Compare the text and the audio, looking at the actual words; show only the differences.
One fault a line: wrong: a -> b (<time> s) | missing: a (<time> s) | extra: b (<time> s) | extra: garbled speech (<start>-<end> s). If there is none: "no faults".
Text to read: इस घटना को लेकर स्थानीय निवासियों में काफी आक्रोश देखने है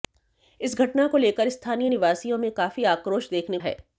no faults